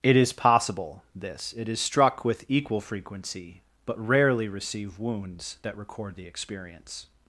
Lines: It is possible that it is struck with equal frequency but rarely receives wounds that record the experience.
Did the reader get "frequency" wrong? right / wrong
right